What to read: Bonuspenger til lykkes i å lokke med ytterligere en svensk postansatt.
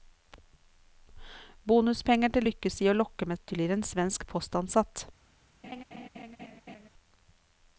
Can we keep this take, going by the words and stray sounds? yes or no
no